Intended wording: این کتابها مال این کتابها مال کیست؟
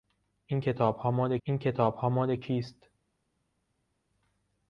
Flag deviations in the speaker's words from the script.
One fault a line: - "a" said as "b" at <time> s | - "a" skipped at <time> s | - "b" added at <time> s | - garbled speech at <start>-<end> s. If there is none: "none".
none